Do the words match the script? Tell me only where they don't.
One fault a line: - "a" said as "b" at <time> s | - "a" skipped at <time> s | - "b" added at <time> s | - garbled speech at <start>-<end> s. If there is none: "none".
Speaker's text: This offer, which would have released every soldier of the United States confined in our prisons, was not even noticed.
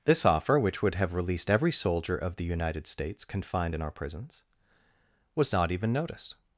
none